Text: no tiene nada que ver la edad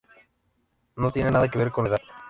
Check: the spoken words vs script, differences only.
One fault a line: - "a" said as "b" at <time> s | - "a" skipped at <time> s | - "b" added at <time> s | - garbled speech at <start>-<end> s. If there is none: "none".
- "con" added at 1.7 s